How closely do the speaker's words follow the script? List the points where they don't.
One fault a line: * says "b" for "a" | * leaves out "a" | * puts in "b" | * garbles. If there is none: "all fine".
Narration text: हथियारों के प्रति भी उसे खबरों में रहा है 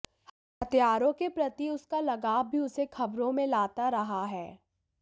* puts in "उसका लगाव"
* puts in "लाता"